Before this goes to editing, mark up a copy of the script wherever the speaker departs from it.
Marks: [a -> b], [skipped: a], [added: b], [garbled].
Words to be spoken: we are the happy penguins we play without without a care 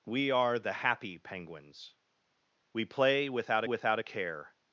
we are the happy penguins we play without without a care